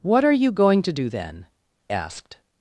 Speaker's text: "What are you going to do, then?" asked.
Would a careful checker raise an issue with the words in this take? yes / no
no